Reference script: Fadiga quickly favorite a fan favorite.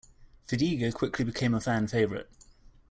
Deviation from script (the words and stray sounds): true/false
true